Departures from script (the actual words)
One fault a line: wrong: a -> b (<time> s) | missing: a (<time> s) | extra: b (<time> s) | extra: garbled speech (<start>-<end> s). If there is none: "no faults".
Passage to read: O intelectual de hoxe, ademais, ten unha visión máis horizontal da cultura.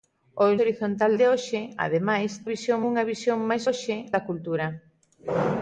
wrong: intelectual -> horizontal (0.6 s)
wrong: ten -> visión (2.5 s)
wrong: horizontal -> hoxe (3.7 s)